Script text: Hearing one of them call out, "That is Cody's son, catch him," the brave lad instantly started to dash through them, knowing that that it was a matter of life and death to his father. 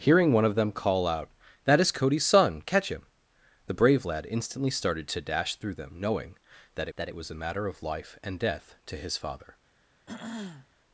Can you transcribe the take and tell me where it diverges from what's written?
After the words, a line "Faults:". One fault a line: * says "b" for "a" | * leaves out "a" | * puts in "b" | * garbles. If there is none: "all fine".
Hearing one of them call out, "That is Cody's son, catch him," the brave lad instantly started to dash through them, knowing that that it was a matter of life and death to his father.
Faults:
all fine